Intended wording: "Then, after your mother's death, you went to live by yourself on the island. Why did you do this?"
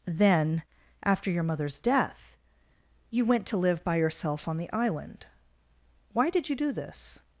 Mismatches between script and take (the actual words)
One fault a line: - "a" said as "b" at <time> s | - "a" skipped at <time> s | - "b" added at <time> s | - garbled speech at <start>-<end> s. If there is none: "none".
none